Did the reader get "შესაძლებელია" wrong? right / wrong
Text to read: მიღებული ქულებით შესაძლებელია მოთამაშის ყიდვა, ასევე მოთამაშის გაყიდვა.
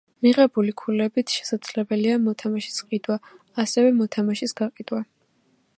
right